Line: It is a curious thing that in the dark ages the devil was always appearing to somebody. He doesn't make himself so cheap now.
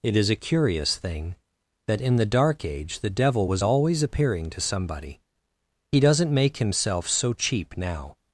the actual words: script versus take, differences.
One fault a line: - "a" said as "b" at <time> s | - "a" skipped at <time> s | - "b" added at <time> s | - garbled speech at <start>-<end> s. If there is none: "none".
- "ages" said as "age" at 2.6 s